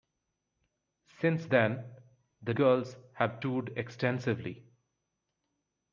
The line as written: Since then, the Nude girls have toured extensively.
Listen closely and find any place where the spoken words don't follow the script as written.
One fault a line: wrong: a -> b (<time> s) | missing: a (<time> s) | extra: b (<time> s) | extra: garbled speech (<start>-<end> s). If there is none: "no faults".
missing: Nude (2.5 s)